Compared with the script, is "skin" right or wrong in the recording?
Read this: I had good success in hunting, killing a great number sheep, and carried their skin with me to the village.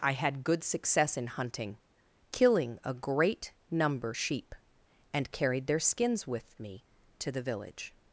wrong